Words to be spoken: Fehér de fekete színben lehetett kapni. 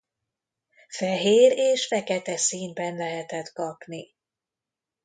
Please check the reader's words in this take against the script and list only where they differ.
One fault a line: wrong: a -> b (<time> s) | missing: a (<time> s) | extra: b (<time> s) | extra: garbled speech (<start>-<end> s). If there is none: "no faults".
wrong: de -> és (1.5 s)